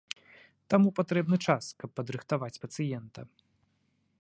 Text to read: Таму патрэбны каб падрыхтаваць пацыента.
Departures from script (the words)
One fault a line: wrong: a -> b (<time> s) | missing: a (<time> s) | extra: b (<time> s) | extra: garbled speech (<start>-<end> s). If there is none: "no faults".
extra: час (1.5 s)